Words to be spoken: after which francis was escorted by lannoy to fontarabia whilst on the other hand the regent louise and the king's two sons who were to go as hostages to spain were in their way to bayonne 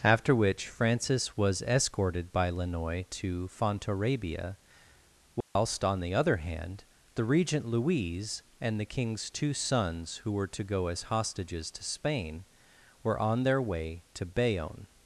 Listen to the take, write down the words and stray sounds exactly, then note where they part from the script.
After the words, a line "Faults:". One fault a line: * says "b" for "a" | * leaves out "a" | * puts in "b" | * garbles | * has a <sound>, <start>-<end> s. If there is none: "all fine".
after which francis was escorted by lannoy to fontarabia whilst on the other hand the regent louise and the king's two sons who were to go as hostages to spain were on their way to bayonne
Faults:
* has a dropout, 5.4-5.6 s
* says "on" for "in"